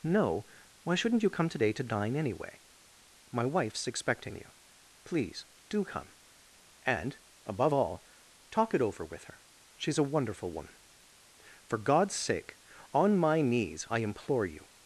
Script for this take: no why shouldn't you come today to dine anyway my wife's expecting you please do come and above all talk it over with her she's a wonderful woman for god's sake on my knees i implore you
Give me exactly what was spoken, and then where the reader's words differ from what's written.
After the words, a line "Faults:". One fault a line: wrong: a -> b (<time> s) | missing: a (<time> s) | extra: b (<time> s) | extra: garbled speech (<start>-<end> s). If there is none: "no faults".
no why shouldn't you come today to dine anyway my wife's expecting you please do come and above all talk it over with her she's a wonderful woman for god's sake on my knees i implore you
Faults:
no faults